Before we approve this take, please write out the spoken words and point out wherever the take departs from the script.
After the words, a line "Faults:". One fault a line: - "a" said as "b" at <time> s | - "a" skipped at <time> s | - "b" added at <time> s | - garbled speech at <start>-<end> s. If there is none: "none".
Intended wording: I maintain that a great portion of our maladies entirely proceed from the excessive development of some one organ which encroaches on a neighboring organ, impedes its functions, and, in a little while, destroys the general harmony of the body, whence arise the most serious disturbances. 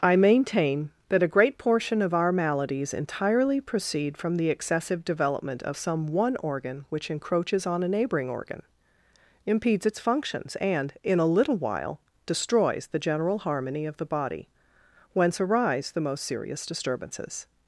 I maintain that a great portion of our maladies entirely proceed from the excessive development of some one organ which encroaches on a neighboring organ, impedes its functions, and, in a little while, destroys the general harmony of the body, whence arise the most serious disturbances.
Faults:
none